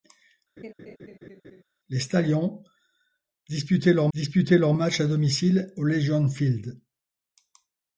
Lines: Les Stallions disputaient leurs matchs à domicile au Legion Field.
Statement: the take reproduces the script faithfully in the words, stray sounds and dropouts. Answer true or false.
false